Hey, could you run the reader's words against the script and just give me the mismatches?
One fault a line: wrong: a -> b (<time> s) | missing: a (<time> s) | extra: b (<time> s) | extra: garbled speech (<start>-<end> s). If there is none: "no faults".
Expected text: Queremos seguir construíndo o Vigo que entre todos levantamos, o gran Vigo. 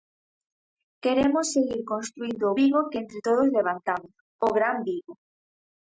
no faults